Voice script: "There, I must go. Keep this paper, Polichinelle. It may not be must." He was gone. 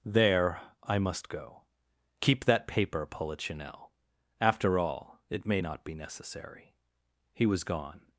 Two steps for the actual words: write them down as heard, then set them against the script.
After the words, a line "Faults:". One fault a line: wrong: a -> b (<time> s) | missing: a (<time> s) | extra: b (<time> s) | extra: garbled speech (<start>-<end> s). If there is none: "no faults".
"There, I must go. Keep that paper, Polichinelle. After all, it may not be necessary." He was gone.
Faults:
wrong: this -> that (2.5 s)
extra: After all (4.4 s)
wrong: must -> necessary (5.9 s)